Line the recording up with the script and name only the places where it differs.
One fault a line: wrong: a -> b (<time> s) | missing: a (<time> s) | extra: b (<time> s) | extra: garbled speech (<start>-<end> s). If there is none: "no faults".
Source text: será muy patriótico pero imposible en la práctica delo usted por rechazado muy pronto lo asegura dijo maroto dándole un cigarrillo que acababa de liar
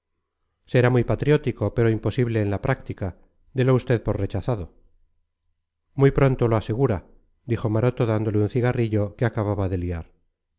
no faults